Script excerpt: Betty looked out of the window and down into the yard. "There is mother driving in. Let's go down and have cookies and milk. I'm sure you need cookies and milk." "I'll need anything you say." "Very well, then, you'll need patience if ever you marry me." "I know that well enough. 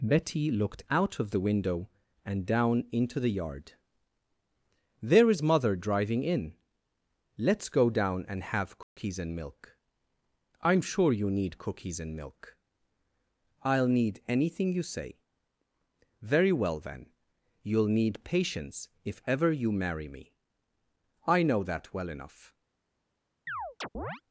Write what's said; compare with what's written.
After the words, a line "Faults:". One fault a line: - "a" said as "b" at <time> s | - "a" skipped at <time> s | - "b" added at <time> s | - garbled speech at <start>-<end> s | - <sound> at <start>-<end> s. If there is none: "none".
Betty looked out of the window and down into the yard. "There is mother driving in. Let's go down and have cookies and milk. I'm sure you need cookies and milk." "I'll need anything you say." "Very well, then, you'll need patience if ever you marry me." "I know that well enough.
Faults:
- dropout at 8.8-9.0 s
- chirp at 23.5-24.2 s